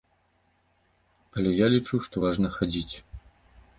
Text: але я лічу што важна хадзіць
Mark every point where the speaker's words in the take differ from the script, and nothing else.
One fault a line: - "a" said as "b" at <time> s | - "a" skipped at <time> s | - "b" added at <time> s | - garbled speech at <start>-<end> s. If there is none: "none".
none